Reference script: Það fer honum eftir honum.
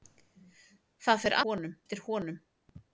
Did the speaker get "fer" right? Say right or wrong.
right